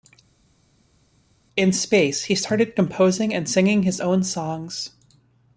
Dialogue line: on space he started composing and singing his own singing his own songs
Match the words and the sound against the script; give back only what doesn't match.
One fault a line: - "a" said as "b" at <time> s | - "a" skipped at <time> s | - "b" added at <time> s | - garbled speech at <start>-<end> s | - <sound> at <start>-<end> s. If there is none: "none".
- "on" said as "in" at 1.6 s
- "singing his own" skipped at 4.2 s